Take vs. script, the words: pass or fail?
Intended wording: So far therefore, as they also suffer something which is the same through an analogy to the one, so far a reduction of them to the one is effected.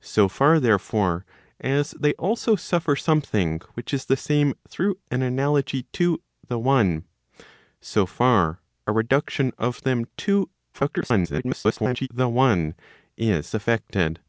fail